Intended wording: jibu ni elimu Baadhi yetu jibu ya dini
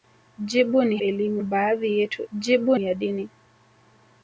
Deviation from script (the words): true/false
false